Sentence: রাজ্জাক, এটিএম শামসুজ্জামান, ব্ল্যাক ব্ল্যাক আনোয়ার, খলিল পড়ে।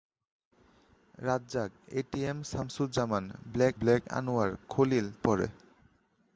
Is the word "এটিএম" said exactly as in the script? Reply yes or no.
yes